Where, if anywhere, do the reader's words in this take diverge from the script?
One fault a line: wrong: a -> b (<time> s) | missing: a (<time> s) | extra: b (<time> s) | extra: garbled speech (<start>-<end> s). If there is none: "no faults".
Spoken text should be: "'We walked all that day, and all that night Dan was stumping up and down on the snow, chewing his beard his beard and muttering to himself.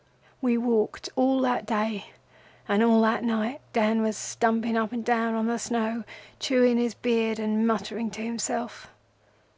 missing: his beard (7.4 s)